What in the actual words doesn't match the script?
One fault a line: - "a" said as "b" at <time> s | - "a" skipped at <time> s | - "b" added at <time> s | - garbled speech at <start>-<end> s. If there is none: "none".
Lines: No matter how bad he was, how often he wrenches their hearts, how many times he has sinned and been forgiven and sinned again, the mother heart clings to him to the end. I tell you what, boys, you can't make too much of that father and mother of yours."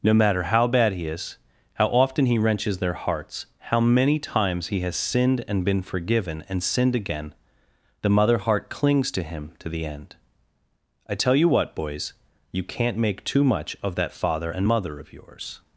- "was" said as "is" at 1.1 s